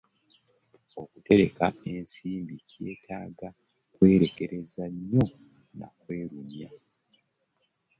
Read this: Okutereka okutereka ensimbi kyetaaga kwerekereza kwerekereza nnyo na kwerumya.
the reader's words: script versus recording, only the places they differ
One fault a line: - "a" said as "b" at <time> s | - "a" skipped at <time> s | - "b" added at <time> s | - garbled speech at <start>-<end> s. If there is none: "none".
- "okutereka" skipped at 1.6 s
- "kwerekereza" skipped at 4.8 s